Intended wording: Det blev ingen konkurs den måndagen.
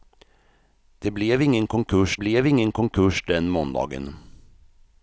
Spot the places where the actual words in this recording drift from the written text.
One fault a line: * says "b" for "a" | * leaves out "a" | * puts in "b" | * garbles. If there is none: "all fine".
* puts in "blev ingen konkurs"